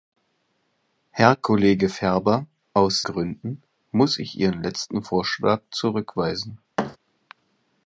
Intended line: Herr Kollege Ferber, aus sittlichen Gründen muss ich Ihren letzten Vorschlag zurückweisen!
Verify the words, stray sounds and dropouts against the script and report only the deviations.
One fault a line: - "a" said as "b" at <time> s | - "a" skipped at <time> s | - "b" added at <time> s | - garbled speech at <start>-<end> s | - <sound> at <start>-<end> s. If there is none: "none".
- "sittlichen" skipped at 3.0 s
- thud at 6.8-7.0 s